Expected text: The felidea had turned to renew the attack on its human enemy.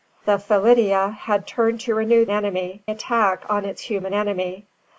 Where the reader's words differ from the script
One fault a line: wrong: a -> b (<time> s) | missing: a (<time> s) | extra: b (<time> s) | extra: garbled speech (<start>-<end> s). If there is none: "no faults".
wrong: the -> enemy (2.3 s)